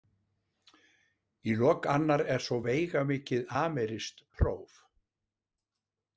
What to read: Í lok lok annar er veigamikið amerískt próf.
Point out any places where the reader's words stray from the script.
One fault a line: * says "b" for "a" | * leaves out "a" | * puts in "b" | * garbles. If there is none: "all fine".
* leaves out "lok"
* puts in "svo"